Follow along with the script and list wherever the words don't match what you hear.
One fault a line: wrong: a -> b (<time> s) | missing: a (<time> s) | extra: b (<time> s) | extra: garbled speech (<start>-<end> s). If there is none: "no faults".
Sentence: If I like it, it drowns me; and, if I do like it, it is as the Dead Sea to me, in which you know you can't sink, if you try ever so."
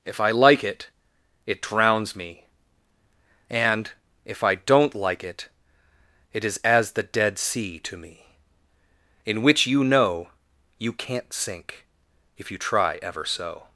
wrong: do -> don't (4.5 s)